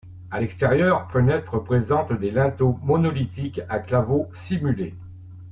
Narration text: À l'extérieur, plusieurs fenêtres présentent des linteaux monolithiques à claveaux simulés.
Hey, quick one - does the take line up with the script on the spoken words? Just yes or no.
no